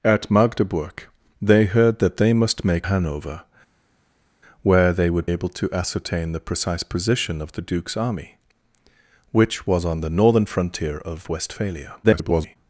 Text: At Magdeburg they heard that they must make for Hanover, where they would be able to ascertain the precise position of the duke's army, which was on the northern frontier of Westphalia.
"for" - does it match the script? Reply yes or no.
no